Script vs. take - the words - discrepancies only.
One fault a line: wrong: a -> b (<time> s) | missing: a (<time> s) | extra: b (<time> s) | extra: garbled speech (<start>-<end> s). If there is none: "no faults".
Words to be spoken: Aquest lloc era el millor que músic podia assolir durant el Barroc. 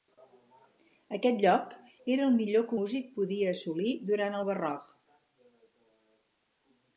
no faults